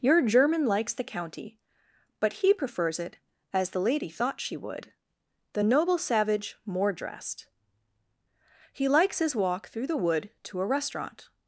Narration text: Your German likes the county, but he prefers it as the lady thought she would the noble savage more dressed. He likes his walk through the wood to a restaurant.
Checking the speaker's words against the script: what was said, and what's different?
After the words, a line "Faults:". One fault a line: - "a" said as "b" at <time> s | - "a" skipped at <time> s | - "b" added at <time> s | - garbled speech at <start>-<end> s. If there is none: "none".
Your German likes the county, but he prefers it as the lady thought she would the noble savage more dressed. He likes his walk through the wood to a restaurant.
Faults:
none